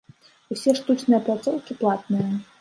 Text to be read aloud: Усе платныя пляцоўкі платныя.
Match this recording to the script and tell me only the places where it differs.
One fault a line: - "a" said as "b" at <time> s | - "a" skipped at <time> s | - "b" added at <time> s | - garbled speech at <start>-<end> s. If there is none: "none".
- "платныя" said as "штучныя" at 0.8 s